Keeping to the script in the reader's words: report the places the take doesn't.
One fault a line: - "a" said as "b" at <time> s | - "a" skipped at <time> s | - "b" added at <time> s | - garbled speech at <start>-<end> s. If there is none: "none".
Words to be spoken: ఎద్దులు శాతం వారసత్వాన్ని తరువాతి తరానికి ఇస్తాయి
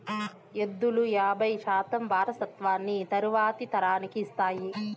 - "యాబై" added at 1.1 s